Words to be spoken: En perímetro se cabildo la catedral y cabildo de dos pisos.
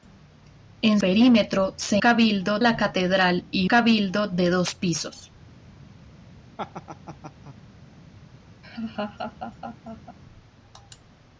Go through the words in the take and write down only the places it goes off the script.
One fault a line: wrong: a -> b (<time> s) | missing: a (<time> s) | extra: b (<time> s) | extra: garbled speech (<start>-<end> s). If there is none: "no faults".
no faults